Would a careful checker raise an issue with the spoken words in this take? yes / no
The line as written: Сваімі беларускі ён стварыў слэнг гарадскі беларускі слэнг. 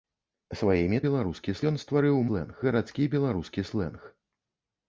no